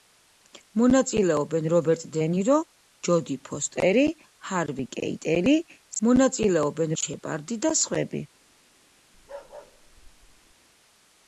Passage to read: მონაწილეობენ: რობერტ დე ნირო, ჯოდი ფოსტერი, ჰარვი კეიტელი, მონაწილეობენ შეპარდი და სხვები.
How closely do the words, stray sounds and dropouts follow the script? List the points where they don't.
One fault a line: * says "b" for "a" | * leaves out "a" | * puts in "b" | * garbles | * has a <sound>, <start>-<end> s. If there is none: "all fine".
* has a bark, 9.1-10.6 s